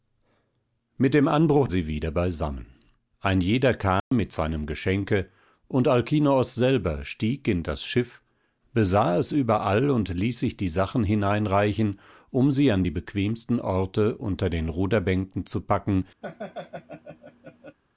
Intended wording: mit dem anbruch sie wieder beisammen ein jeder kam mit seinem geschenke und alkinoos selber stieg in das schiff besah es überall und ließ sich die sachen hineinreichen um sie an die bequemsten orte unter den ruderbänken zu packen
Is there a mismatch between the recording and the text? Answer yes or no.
no